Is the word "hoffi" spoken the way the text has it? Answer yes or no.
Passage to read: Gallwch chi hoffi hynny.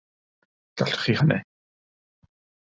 no